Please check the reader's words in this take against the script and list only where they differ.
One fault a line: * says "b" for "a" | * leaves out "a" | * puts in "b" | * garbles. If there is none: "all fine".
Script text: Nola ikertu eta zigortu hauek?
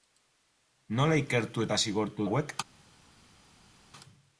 all fine